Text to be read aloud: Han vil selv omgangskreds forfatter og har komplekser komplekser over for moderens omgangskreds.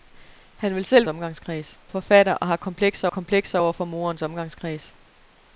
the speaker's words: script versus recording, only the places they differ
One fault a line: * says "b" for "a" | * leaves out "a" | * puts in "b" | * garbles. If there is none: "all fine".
all fine